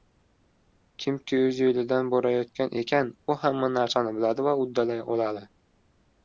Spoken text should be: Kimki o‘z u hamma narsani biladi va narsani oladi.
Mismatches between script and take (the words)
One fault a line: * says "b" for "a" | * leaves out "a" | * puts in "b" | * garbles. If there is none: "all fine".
* puts in "yo‘lidan borayotgan ekan"
* says "uddalay" for "narsani"